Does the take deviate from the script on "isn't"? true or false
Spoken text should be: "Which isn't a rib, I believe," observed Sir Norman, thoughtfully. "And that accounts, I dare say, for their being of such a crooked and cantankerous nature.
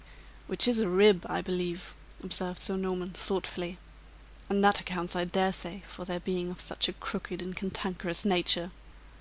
true